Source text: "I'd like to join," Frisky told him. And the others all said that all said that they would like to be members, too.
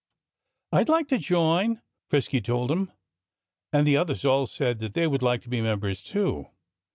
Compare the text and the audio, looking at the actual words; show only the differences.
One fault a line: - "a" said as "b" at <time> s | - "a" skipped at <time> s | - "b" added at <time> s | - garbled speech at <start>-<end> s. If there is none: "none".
- "all said that" skipped at 5.0 s